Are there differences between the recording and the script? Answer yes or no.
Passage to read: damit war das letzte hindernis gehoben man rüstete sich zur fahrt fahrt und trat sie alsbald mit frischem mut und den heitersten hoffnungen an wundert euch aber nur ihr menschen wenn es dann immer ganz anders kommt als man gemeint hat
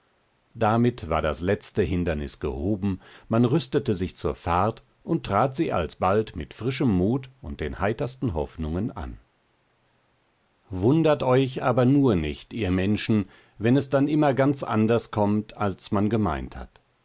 yes